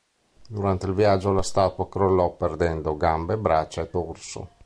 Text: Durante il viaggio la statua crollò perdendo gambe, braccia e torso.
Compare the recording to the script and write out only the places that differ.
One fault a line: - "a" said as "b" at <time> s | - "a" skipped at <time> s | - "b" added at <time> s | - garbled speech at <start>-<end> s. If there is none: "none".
none